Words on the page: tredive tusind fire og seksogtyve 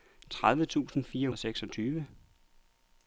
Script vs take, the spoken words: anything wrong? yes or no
no